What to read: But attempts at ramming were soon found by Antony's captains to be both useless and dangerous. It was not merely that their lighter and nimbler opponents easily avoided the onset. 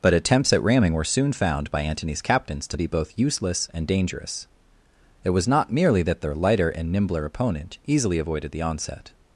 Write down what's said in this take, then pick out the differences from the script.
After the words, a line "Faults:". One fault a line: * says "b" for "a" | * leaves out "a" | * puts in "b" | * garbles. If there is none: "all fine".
But attempts at ramming were soon found by Antony's captains to be both useless and dangerous. It was not merely that their lighter and nimbler opponent easily avoided the onset.
Faults:
* says "opponent" for "opponents"